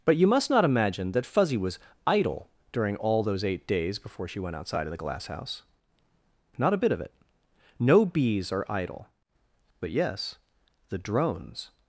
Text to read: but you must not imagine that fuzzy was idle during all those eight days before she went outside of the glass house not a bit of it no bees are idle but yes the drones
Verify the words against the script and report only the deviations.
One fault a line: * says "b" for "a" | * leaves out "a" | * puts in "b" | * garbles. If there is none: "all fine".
all fine